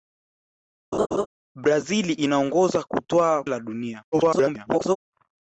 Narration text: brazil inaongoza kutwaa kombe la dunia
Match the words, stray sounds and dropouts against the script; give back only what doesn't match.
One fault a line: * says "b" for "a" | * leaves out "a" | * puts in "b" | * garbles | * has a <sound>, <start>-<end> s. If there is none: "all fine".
* has a laugh, 0.9-1.3 s
* leaves out "kombe"
* garbles